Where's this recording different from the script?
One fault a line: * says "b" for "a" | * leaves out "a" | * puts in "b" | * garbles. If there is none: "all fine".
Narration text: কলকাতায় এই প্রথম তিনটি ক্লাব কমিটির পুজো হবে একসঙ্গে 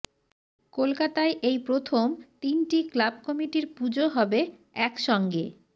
all fine